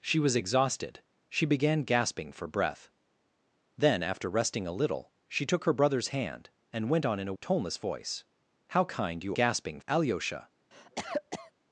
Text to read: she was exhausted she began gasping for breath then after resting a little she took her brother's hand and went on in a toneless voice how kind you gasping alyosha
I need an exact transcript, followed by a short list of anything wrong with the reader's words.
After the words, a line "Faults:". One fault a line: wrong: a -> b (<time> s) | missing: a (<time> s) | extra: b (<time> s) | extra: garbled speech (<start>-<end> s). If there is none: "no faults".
she was exhausted she began gasping for breath then after resting a little she took her brother's hand and went on in a toneless voice how kind you gasping alyosha
Faults:
no faults